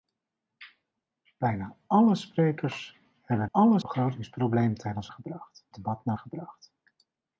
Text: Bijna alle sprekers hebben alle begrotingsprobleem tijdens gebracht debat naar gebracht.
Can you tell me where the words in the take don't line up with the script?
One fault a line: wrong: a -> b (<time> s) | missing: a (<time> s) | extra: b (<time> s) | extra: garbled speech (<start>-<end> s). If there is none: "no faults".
no faults